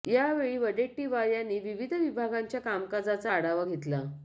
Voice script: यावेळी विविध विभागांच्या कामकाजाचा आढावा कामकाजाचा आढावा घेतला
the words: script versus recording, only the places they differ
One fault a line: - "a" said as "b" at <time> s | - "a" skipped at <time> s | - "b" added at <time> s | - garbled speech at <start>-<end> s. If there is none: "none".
- "वडेट्टीवार यांनी" added at 0.6 s
- "कामकाजाचा आढावा" skipped at 3.6 s